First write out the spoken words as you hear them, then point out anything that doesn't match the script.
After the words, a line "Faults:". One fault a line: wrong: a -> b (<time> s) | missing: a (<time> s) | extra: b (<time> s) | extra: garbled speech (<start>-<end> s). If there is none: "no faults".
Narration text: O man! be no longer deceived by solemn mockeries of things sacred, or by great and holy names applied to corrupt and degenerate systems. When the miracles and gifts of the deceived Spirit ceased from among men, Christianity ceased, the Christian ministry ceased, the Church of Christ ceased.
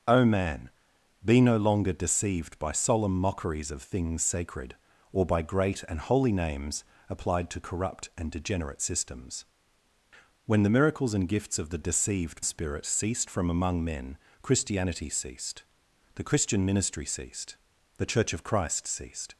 O man! be no longer deceived by solemn mockeries of things sacred, or by great and holy names applied to corrupt and degenerate systems. When the miracles and gifts of the deceived Spirit ceased from among men, Christianity ceased, the Christian ministry ceased, the Church of Christ ceased.
Faults:
no faults